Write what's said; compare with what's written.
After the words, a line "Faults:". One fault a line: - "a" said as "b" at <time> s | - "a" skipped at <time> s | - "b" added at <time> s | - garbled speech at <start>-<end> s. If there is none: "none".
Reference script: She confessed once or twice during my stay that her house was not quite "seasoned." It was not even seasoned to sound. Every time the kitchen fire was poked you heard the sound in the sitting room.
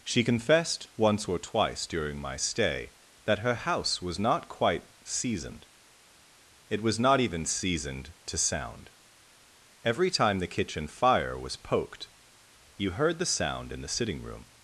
She confessed once or twice during my stay that her house was not quite "seasoned." It was not even seasoned to sound. Every time the kitchen fire was poked you heard the sound in the sitting room.
Faults:
none